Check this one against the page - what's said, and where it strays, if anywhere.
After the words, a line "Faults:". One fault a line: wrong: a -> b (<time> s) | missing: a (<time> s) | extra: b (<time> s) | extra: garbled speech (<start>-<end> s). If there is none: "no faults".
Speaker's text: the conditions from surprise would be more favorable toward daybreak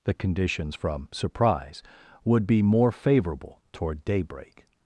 the conditions from surprise would be more favorable toward daybreak
Faults:
no faults